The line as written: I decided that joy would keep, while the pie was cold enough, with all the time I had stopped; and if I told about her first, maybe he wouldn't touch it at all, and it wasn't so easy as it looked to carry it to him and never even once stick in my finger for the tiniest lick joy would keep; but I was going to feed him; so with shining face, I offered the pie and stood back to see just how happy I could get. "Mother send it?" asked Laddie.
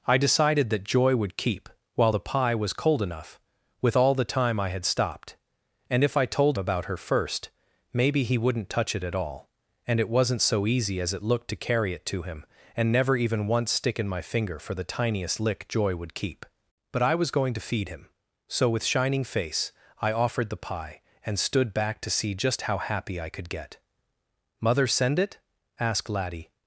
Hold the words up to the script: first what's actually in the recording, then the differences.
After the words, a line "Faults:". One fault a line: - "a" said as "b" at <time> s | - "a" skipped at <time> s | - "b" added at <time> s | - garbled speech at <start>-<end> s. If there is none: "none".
I decided that joy would keep, while the pie was cold enough, with all the time I had stopped; and if I told about her first, maybe he wouldn't touch it at all, and it wasn't so easy as it looked to carry it to him and never even once stick in my finger for the tiniest lick joy would keep; but I was going to feed him; so with shining face, I offered the pie and stood back to see just how happy I could get. "Mother send it?" asked Laddie.
Faults:
none